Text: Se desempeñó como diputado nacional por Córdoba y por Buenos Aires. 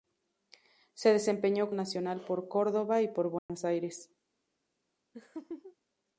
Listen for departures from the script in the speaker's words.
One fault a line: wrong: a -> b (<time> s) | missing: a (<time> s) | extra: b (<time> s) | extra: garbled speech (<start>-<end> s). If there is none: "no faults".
missing: como diputado (1.7 s)